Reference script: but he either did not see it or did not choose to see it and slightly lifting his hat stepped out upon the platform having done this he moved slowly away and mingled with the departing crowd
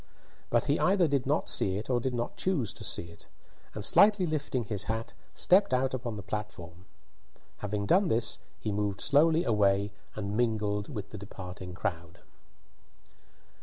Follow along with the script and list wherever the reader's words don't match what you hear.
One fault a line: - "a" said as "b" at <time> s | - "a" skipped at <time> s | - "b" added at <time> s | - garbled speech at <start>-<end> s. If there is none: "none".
none